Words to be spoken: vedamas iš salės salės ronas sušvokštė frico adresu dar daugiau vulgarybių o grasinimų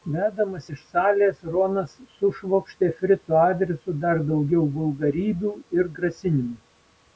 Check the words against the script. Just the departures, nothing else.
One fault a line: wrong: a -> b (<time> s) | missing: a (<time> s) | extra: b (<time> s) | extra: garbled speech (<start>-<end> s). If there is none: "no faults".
missing: salės (1.4 s)
wrong: o -> ir (5.8 s)